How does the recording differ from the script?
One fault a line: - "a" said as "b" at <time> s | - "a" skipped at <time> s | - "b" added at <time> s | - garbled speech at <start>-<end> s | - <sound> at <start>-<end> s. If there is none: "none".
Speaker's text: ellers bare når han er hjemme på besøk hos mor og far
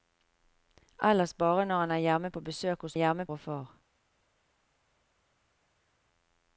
- "mor" said as "hjemme" at 2.9 s